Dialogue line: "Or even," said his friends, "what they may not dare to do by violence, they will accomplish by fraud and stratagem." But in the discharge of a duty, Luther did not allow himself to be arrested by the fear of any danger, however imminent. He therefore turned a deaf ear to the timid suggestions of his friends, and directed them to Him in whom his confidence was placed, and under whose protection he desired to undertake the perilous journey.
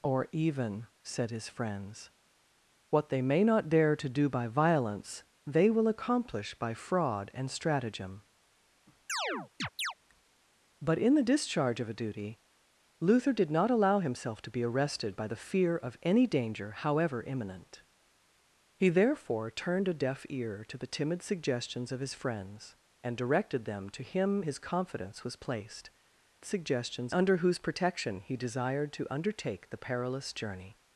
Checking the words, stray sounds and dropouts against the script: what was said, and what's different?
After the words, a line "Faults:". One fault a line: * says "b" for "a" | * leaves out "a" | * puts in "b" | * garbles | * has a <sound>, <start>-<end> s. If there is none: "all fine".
"Or even," said his friends, "what they may not dare to do by violence, they will accomplish by fraud and stratagem." But in the discharge of a duty, Luther did not allow himself to be arrested by the fear of any danger, however imminent. He therefore turned a deaf ear to the timid suggestions of his friends, and directed them to Him his confidence was placed, suggestions under whose protection he desired to undertake the perilous journey.
Faults:
* has a chirp, 9.1-9.9 s
* leaves out "in whom"
* says "suggestions" for "and"